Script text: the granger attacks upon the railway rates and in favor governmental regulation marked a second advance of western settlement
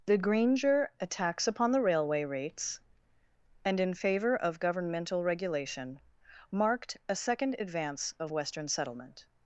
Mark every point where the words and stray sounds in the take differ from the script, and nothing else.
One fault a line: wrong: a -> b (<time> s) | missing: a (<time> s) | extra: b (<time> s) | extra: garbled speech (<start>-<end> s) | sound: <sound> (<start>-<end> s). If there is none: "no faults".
extra: of (4.3 s)